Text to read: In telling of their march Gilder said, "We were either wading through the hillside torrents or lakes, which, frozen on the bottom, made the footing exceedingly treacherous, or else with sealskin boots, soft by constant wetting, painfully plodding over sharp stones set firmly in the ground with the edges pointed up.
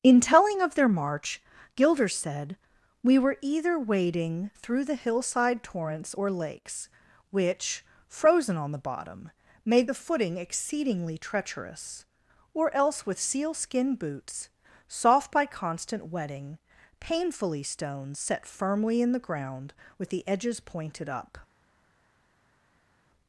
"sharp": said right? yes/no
no